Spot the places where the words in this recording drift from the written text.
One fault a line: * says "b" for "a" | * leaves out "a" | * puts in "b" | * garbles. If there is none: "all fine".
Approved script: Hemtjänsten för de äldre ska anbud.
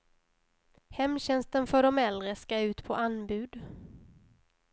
* puts in "ut på"